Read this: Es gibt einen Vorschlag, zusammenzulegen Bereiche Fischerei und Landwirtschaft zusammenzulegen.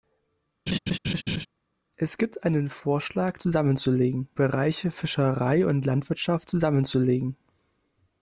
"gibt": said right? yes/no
yes